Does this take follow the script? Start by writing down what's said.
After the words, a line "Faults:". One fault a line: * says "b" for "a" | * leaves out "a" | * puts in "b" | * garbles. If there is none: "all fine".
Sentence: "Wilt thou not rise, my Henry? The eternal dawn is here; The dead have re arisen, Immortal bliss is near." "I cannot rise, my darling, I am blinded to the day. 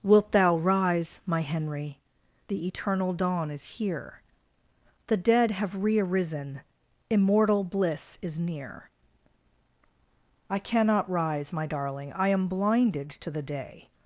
"Wilt thou rise, my Henry? The eternal dawn is here; The dead have re arisen, Immortal bliss is near." "I cannot rise, my darling, I am blinded to the day.
Faults:
* leaves out "not"